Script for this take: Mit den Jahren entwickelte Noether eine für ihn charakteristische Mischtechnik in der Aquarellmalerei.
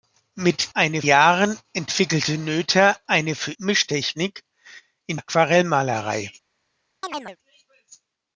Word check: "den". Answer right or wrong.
wrong